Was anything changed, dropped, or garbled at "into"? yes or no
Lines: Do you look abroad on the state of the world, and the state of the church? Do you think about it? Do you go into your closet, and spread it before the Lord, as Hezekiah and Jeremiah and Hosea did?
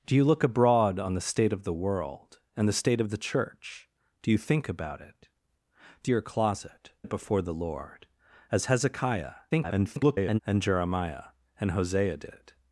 yes